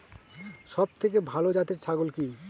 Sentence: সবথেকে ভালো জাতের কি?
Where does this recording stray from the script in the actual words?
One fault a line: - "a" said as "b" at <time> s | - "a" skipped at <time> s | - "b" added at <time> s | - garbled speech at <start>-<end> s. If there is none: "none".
- "ছাগল" added at 1.8 s